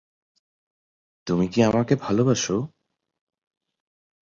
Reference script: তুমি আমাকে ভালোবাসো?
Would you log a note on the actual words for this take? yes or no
yes